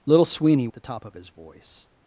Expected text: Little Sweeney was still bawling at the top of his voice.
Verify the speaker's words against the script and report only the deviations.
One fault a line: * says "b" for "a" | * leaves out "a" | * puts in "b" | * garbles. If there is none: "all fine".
* leaves out "was still bawling"